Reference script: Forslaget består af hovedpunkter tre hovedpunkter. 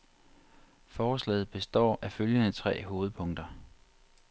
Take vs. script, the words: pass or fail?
fail